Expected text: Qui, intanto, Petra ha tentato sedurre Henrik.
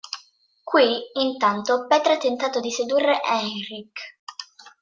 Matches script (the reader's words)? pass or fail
fail